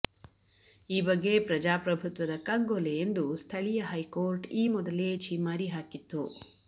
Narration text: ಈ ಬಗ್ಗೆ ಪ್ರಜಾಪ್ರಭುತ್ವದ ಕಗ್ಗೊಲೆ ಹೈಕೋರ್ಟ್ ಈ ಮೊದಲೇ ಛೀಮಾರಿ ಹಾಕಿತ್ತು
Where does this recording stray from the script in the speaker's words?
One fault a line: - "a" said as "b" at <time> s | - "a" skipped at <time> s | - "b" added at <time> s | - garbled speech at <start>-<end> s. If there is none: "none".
- "ಎಂದು ಸ್ಥಳೀಯ" added at 3.0 s